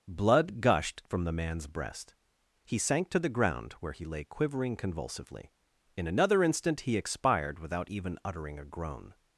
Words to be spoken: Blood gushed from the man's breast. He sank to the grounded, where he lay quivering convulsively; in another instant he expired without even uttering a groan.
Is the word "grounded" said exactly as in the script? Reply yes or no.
no